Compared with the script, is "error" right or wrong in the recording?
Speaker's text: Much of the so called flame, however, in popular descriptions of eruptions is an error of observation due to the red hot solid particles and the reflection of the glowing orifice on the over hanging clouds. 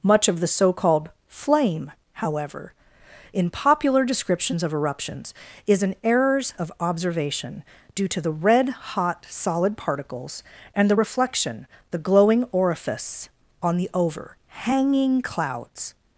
wrong